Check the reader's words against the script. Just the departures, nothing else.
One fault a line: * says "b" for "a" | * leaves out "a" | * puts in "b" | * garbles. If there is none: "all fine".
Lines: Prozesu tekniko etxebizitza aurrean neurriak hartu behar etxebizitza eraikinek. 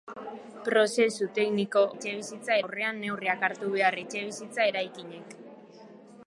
all fine